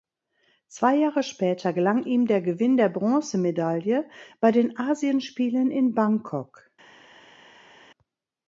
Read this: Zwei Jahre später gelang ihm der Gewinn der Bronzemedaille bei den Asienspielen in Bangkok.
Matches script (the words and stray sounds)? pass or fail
pass